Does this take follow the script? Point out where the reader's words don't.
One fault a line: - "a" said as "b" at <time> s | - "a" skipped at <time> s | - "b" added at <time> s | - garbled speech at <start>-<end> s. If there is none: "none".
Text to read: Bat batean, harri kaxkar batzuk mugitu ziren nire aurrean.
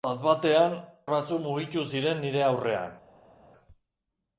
- "harri kaxkar" skipped at 0.7 s